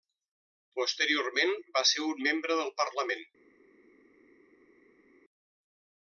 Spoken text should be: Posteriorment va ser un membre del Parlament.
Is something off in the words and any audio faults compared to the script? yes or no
no